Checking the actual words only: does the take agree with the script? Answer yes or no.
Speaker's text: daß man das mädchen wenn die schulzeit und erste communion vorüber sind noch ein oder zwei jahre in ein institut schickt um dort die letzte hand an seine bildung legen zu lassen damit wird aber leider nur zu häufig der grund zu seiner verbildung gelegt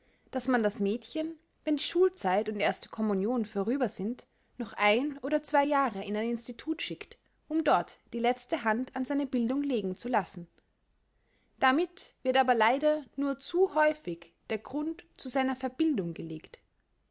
yes